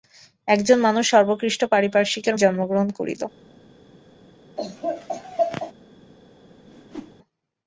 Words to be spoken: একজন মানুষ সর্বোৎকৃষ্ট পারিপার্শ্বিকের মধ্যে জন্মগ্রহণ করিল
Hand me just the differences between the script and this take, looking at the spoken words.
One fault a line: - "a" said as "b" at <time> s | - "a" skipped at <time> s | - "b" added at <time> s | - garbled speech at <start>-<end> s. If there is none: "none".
- "মধ্যে" skipped at 2.4 s